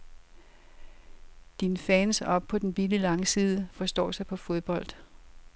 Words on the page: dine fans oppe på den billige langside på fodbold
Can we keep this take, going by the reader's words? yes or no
no